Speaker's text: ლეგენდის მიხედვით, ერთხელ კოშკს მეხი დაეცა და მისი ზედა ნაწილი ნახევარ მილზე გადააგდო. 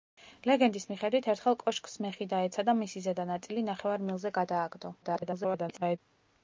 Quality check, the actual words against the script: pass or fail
fail